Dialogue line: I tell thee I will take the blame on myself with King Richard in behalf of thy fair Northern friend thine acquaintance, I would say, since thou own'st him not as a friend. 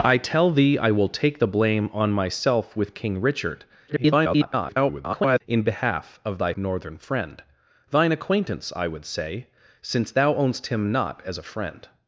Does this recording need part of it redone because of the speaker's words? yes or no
yes